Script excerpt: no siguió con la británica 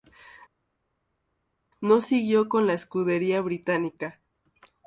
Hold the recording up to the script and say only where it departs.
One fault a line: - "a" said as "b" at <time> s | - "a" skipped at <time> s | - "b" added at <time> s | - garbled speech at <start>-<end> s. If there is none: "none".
- "escudería" added at 2.7 s